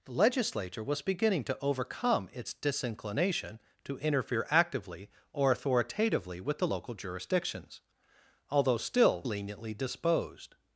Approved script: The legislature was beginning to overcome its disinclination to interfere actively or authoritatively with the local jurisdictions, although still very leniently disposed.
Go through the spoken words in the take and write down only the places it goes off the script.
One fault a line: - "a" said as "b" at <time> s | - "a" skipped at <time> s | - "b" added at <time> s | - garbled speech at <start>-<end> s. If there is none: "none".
- "very" skipped at 9.3 s